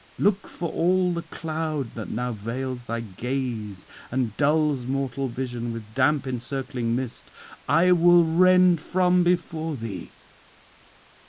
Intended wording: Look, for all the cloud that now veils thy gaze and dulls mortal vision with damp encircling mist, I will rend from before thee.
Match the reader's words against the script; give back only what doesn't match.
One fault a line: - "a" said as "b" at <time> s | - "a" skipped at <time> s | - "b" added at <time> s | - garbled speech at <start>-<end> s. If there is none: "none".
none